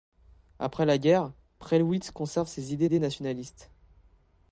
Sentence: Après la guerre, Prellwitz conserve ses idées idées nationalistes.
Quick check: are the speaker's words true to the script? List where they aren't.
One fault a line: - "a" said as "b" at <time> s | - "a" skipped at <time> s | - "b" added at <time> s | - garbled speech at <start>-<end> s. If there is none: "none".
none